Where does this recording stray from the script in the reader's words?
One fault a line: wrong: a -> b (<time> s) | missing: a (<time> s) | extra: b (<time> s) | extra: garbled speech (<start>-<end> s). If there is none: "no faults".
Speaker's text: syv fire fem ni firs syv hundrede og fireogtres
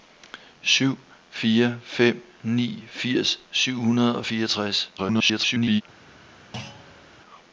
extra: garbled speech (5.0-5.8 s)